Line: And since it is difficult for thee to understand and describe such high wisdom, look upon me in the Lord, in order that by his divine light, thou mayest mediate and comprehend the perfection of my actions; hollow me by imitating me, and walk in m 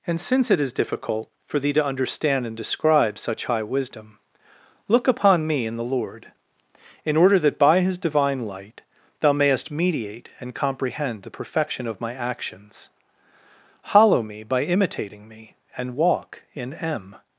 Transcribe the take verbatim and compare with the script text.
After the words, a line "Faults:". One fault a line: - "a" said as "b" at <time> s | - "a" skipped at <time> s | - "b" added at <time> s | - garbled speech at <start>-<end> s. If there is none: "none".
And since it is difficult for thee to understand and describe such high wisdom, look upon me in the Lord, in order that by his divine light, thou mayest mediate and comprehend the perfection of my actions; hollow me by imitating me, and walk in m
Faults:
none